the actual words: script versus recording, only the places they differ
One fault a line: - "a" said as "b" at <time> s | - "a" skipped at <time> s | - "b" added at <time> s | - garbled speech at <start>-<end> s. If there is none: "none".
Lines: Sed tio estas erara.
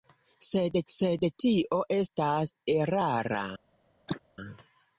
- "sed" added at 0.9 s